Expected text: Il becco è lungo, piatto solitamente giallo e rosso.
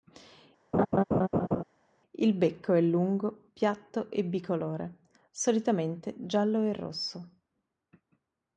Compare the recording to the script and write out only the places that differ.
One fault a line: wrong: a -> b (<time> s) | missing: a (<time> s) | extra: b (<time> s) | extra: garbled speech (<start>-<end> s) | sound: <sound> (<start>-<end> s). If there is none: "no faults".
sound: laugh (0.7-1.6 s)
extra: e bicolore (4.1 s)